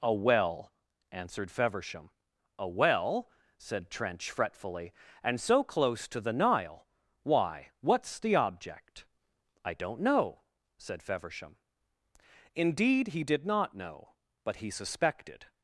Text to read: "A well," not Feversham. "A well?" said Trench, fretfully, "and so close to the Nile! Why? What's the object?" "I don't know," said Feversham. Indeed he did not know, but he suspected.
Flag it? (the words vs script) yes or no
yes